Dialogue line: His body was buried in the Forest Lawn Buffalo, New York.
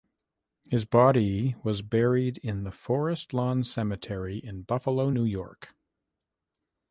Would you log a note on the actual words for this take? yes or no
yes